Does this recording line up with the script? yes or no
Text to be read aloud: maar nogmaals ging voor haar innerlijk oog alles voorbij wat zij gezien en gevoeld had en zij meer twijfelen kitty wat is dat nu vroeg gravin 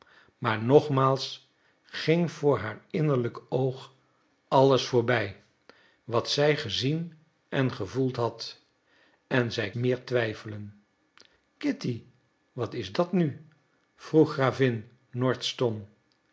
yes